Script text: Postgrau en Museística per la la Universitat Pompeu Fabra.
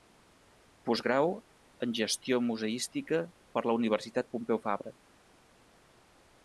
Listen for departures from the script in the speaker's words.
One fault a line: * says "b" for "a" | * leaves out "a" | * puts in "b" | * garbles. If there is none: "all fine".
* puts in "Gestió"
* leaves out "la"